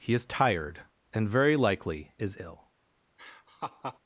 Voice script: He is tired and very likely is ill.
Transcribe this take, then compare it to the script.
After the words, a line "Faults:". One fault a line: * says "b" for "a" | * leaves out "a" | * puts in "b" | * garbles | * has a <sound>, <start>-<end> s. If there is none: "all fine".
He is tired and very likely is ill.
Faults:
* has a laugh, 3.2-4.0 s